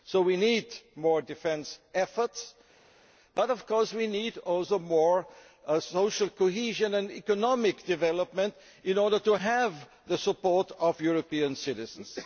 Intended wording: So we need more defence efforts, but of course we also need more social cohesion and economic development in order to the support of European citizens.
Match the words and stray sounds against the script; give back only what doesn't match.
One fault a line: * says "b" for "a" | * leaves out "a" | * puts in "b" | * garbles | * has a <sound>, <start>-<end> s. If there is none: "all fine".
* puts in "have"